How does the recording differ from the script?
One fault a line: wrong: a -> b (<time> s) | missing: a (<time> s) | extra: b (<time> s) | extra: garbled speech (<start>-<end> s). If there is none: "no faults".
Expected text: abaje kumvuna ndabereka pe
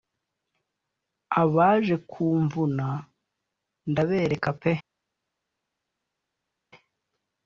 no faults